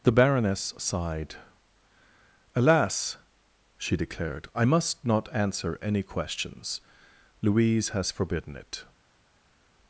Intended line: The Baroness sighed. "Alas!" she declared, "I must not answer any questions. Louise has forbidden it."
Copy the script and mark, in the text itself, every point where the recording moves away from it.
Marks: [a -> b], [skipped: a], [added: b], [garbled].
The Baroness sighed. "Alas!" she declared, "I must not answer any questions. Louise has forbidden it."